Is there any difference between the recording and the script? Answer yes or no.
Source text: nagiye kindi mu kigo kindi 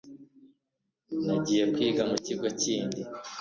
yes